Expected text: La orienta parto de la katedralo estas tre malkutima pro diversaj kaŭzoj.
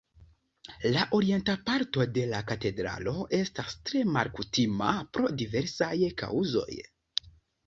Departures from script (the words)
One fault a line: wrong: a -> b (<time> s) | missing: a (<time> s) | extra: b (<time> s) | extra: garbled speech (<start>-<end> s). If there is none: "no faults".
no faults